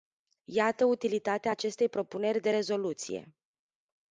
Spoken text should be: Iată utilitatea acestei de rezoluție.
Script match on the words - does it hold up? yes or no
no